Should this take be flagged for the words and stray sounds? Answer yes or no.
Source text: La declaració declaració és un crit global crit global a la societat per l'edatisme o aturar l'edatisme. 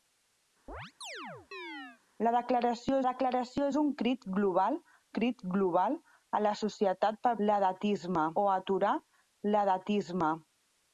yes